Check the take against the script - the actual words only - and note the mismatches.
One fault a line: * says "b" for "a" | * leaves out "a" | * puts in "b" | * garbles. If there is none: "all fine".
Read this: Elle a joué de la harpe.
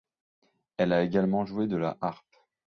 * puts in "également"